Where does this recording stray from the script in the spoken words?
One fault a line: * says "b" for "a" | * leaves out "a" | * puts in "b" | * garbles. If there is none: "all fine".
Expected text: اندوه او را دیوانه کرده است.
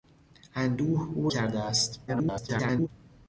* leaves out "را دیوانه"
* garbles